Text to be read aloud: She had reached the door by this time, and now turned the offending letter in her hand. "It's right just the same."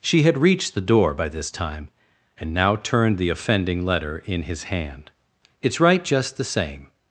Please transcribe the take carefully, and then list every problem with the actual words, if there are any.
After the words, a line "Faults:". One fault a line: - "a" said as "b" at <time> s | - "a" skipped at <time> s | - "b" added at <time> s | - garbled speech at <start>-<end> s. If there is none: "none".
She had reached the door by this time, and now turned the offending letter in his hand. "It's right just the same."
Faults:
- "her" said as "his" at 4.4 s